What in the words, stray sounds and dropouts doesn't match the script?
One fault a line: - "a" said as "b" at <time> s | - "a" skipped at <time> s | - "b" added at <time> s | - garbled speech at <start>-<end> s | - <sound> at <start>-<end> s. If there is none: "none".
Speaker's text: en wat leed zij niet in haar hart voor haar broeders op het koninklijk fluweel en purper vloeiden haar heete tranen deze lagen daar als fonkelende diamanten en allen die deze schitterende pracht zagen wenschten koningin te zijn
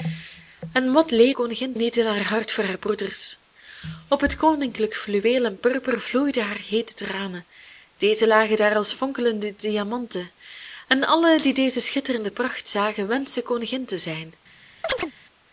- "zij" said as "koningin" at 1.3 s
- chirp at 14.8-15.1 s